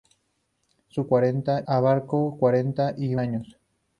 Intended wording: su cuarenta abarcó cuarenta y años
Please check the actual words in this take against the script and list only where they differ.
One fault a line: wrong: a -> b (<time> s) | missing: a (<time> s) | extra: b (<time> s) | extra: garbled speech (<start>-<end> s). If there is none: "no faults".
no faults